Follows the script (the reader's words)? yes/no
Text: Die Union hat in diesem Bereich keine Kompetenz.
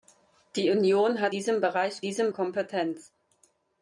no